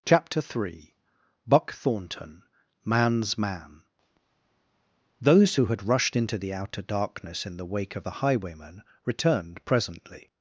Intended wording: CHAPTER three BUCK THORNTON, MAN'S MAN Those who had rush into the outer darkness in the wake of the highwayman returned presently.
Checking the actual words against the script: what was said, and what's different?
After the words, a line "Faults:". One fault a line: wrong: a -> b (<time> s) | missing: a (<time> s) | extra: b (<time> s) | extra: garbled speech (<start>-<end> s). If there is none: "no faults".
CHAPTER three BUCK THORNTON, MAN'S MAN Those who had rushed into the outer darkness in the wake of the highwayman returned presently.
Faults:
wrong: rush -> rushed (5.9 s)